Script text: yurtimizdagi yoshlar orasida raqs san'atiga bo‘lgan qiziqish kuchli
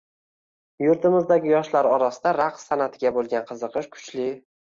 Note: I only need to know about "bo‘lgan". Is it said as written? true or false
true